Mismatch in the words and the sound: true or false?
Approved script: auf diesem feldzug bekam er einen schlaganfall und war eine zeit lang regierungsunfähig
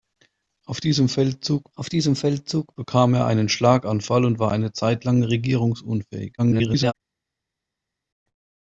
true